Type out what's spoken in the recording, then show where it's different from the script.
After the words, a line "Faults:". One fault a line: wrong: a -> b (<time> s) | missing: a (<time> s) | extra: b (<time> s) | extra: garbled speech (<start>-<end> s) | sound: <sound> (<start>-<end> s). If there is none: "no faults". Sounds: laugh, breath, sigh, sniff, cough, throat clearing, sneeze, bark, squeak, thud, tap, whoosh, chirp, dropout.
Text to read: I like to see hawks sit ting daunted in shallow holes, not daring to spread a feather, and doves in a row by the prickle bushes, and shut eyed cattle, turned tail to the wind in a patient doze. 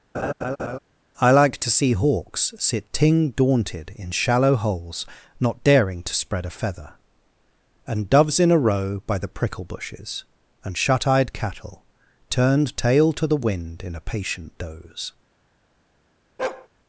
I like to see hawks sit ting daunted in shallow holes, not daring to spread a feather, and doves in a row by the prickle bushes, and shut eyed cattle, turned tail to the wind in a patient doze.
Faults:
sound: laugh (0.1-0.8 s)
sound: bark (16.4-16.7 s)